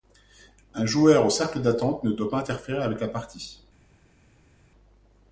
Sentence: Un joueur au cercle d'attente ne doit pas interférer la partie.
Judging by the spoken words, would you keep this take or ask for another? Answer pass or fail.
fail